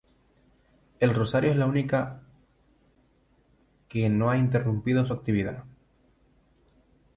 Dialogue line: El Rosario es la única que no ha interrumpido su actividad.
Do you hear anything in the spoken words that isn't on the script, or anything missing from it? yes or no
no